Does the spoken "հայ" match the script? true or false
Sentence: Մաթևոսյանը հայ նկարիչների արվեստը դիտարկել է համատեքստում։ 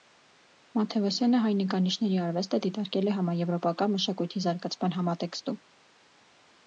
true